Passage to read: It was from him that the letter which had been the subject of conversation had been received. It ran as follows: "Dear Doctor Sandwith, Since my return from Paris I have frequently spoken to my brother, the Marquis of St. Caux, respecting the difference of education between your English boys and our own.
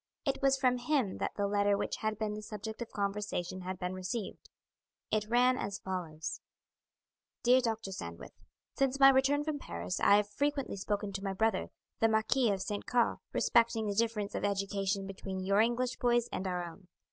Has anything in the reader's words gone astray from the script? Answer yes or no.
no